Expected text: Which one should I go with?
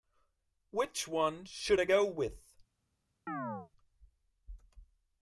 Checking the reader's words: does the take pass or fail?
pass